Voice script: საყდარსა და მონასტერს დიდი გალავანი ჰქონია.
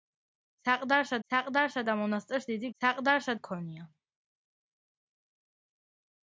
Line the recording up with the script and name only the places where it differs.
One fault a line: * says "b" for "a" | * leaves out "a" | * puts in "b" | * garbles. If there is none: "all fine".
* puts in "საყდარსა"
* says "საყდარსა" for "გალავანი"